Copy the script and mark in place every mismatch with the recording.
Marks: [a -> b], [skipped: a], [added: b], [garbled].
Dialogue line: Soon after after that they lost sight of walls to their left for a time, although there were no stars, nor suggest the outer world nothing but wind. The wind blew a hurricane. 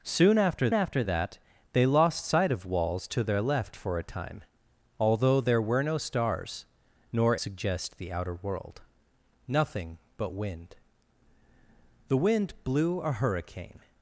Soon after after that they lost sight of walls to their left for a time, although there were no stars, nor suggest the outer world nothing but wind. The wind blew a hurricane.